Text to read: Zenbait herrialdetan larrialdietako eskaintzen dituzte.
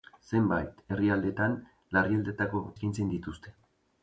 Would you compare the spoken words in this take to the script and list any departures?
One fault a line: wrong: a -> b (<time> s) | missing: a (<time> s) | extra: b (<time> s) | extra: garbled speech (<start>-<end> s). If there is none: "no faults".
no faults